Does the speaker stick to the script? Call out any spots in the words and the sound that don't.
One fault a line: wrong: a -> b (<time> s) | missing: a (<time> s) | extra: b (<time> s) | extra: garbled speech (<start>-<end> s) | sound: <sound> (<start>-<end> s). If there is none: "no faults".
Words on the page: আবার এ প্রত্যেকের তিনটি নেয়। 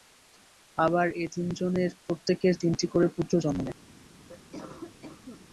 extra: তিনজনের (1.3 s)
extra: করে পুত্র জন্ম (2.9 s)
sound: cough (4.3-5.5 s)